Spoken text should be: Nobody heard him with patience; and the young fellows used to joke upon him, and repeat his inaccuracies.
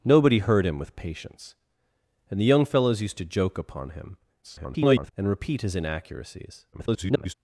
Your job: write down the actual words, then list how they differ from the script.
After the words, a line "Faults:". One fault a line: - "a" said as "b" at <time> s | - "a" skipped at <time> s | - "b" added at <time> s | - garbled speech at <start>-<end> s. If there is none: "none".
Nobody heard him with patience; and the young fellows used to joke upon him, [garbled] and repeat his inaccuracies. [garbled]
Faults:
- garbled speech at 4.4-5.1 s
- garbled speech at 6.7-7.3 s